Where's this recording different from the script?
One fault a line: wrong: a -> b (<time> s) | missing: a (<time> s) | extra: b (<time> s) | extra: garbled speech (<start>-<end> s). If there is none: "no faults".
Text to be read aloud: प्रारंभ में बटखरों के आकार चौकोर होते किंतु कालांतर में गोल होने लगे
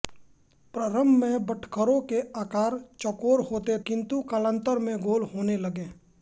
no faults